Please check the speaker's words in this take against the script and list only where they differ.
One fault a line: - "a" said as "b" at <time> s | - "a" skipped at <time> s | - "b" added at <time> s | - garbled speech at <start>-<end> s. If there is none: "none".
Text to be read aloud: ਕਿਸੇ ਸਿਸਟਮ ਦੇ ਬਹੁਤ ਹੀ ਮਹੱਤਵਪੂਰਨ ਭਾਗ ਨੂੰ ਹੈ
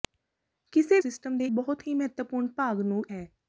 none